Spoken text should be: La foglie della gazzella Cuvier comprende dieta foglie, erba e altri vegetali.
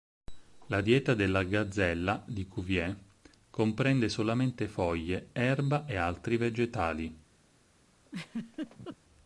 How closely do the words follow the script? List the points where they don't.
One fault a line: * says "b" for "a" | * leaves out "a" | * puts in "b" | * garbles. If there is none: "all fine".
* says "dieta" for "foglie"
* puts in "di"
* says "solamente" for "dieta"